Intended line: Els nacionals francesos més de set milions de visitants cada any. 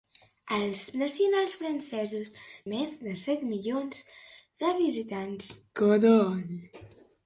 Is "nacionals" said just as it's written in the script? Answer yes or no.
yes